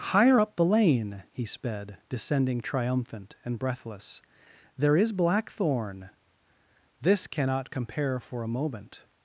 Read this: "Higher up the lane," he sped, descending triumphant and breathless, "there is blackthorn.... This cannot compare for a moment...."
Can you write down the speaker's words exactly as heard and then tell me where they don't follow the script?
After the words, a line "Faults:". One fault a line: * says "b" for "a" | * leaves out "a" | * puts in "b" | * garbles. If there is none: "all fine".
"Higher up the lane," he sped, descending triumphant and breathless, "there is blackthorn.... This cannot compare for a moment...."
Faults:
all fine